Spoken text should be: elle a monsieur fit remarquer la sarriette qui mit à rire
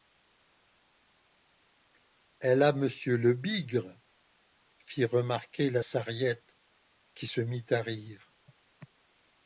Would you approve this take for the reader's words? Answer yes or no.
no